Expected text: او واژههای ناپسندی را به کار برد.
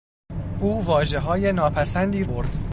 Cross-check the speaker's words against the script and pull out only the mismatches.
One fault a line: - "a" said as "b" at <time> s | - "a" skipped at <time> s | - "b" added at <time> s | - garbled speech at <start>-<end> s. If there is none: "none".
- "را به کار" skipped at 2.2 s